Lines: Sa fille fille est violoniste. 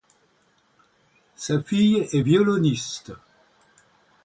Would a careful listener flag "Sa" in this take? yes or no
no